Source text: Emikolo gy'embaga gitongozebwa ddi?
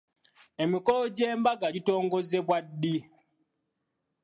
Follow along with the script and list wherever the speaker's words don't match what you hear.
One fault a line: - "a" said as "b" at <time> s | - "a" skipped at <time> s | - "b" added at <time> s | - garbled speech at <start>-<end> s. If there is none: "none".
none